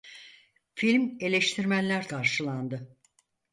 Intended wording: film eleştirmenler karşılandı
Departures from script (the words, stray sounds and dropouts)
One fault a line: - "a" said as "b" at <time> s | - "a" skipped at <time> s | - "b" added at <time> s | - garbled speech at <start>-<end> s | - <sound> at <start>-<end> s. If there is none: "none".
none